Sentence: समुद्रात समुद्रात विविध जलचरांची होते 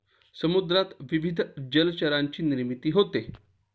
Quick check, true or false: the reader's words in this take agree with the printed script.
false